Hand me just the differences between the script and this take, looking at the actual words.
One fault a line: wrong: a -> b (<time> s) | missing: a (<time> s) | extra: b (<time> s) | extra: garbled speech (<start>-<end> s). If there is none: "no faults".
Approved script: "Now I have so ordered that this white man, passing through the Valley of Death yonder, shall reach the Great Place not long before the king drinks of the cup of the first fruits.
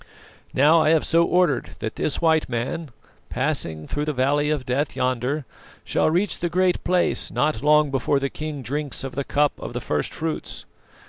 no faults